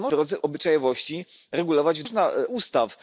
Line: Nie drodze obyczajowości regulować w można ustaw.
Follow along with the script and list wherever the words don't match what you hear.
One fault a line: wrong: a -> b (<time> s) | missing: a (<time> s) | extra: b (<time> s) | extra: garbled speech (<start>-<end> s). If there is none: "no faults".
no faults